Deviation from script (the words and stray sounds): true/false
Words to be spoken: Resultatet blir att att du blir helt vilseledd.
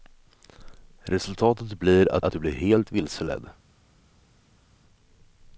false